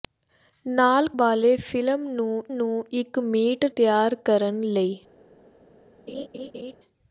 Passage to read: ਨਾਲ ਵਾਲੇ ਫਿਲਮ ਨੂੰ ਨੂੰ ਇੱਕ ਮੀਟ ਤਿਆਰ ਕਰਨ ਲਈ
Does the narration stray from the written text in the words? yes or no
no